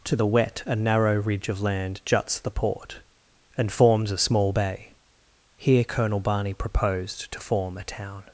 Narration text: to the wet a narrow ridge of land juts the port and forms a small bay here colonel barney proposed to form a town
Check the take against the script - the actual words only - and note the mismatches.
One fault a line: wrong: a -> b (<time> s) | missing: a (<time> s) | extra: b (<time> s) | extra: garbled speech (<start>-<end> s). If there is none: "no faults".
no faults